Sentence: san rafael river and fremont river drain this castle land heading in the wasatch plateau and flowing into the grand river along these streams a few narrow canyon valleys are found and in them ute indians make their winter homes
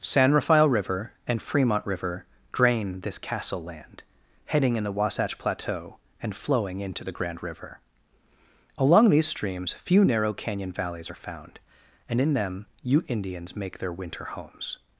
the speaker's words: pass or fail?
fail